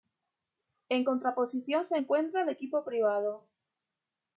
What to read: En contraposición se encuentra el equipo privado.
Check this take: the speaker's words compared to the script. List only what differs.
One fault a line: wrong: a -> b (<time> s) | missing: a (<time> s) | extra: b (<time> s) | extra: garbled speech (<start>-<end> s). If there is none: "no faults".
no faults